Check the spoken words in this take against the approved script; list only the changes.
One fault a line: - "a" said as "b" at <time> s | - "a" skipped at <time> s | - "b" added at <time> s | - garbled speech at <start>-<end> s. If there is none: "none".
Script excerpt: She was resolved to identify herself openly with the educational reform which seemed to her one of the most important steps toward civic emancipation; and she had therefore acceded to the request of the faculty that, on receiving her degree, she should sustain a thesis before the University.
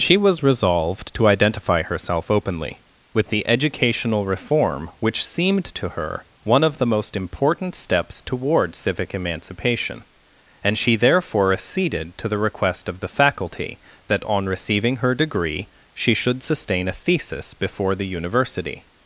- "had" skipped at 10.9 s